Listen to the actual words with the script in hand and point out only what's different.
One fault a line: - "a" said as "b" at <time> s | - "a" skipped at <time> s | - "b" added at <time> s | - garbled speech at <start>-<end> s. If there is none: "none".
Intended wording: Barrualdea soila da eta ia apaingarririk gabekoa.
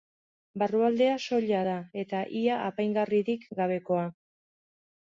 none